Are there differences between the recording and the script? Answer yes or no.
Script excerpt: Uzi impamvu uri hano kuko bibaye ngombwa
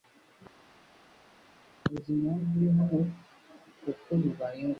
no